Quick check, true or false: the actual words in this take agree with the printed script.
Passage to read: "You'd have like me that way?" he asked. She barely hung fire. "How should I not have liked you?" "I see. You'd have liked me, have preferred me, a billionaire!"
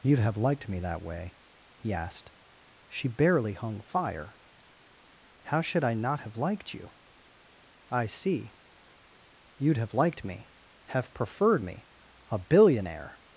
false